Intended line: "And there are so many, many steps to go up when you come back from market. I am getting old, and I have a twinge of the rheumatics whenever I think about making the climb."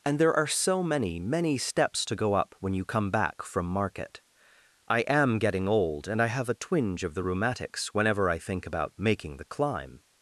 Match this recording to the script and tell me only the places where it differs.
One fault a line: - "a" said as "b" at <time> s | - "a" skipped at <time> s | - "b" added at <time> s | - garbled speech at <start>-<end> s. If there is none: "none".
none